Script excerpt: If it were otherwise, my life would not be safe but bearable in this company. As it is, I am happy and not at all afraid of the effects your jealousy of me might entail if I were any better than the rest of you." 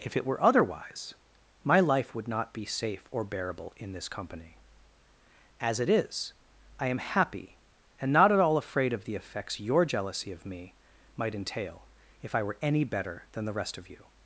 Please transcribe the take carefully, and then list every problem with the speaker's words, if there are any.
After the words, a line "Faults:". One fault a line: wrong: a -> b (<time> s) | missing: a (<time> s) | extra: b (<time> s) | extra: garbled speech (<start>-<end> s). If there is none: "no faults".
If it were otherwise, my life would not be safe or bearable in this company. As it is, I am happy and not at all afraid of the effects your jealousy of me might entail if I were any better than the rest of you."
Faults:
wrong: but -> or (3.1 s)